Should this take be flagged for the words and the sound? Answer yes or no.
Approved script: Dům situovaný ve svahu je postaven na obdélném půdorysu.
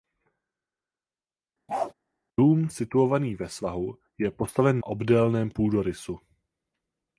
yes